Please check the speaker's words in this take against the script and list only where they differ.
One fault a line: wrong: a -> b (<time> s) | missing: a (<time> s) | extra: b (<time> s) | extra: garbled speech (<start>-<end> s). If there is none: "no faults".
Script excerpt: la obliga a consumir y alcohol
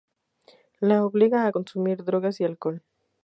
extra: drogas (2.0 s)